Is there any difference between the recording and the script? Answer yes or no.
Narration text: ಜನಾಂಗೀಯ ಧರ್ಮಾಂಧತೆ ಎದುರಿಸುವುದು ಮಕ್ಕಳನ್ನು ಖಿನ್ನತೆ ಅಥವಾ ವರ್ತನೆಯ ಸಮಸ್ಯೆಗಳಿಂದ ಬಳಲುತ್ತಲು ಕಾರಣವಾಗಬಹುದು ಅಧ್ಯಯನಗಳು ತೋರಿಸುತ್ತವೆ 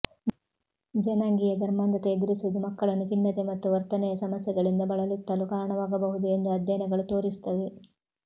yes